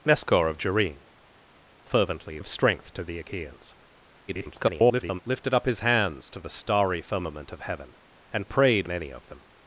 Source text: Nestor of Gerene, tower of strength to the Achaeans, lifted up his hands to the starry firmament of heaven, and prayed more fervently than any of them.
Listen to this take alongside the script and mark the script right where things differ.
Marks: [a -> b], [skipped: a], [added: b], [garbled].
Nestor of Gerene, [tower -> fervently] of strength to the Achaeans, [garbled] lifted up his hands to the starry firmament of heaven, and prayed [skipped: more fervently than] any of them.